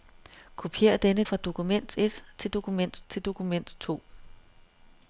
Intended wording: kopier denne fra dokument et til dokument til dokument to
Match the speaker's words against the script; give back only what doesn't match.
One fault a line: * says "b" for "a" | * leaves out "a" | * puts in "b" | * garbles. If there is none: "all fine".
all fine